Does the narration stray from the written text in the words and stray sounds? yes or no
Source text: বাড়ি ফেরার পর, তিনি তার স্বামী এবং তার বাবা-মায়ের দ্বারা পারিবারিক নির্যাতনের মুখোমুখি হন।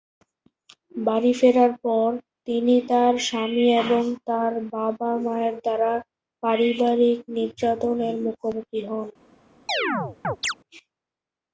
yes